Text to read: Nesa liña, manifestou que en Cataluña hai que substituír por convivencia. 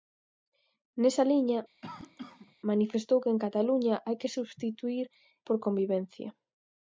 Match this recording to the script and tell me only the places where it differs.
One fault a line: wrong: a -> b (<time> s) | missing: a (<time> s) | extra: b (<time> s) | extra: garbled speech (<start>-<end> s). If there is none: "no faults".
no faults